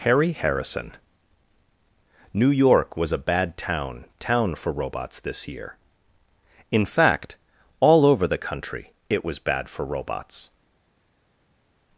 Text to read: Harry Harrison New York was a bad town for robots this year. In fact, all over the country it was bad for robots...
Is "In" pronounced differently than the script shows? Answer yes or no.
no